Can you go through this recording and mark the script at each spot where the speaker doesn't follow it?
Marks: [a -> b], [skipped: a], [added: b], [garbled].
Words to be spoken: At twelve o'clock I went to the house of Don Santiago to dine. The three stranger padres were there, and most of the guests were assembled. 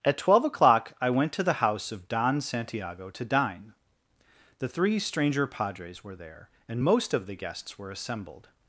At twelve o'clock I went to the house of Don Santiago to dine. The three stranger padres were there, and most of the guests were assembled.